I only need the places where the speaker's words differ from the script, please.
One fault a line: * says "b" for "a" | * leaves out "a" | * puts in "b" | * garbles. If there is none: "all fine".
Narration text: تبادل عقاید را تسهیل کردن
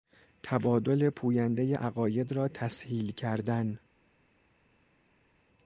* puts in "پویندهی"